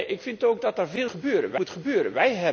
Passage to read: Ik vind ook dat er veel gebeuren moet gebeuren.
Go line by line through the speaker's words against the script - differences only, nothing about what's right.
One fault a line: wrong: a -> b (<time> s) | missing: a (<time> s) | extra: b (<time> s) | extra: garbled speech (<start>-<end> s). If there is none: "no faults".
no faults